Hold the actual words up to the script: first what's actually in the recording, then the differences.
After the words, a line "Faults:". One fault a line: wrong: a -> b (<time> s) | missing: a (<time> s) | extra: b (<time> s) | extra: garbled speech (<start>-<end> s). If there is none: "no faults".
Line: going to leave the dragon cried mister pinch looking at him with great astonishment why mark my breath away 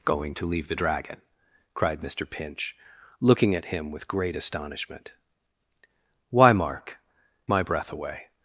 going to leave the dragon cried mister pinch looking at him with great astonishment why mark my breath away
Faults:
no faults